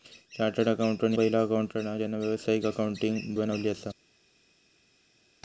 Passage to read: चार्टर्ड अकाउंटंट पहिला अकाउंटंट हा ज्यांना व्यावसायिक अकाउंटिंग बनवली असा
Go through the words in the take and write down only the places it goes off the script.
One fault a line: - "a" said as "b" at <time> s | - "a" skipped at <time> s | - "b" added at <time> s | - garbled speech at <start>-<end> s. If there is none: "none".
none